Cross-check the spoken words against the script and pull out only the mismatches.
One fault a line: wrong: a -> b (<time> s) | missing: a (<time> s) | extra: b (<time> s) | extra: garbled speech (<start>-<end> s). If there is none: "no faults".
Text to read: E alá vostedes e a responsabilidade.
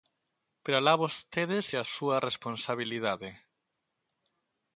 wrong: E -> Pero (0.6 s)
extra: súa (1.9 s)